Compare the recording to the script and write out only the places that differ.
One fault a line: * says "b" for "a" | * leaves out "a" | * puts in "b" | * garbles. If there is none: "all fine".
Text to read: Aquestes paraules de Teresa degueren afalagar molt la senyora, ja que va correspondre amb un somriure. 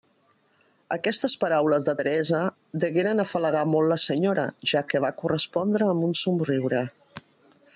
all fine